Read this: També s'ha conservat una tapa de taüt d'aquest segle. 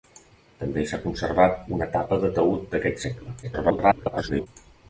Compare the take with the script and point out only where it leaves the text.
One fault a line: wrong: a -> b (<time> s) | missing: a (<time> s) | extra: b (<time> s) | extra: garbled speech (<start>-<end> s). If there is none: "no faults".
extra: garbled speech (3.4-4.5 s)